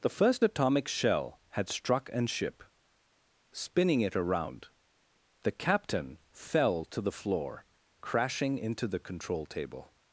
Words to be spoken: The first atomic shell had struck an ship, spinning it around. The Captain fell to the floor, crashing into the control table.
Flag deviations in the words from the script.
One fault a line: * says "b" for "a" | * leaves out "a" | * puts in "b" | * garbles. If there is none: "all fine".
all fine